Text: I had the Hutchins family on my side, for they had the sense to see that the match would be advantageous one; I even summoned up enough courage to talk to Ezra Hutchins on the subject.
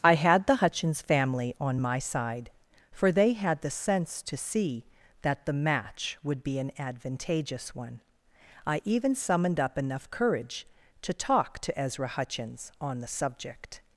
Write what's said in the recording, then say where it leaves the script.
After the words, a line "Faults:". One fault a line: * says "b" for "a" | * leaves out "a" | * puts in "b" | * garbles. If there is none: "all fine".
I had the Hutchins family on my side, for they had the sense to see that the match would be an advantageous one; I even summoned up enough courage to talk to Ezra Hutchins on the subject.
Faults:
* puts in "an"